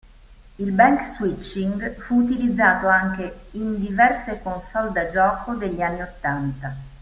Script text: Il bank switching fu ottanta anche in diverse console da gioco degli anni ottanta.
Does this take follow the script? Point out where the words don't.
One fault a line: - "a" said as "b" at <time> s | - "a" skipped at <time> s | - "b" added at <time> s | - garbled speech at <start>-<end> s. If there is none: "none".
- "ottanta" said as "utilizzato" at 2.2 s